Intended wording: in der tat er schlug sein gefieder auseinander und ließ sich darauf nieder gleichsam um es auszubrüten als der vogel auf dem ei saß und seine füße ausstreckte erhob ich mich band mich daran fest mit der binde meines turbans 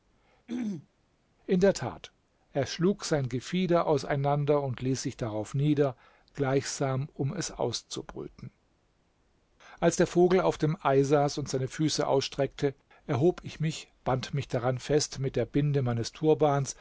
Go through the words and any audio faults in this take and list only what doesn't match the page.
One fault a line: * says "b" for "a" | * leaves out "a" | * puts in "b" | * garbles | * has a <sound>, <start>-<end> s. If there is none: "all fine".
* has a throat clearing, 0.5-0.9 s